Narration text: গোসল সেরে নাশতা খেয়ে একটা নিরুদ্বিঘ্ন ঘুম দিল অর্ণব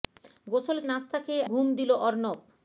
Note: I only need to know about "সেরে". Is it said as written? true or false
false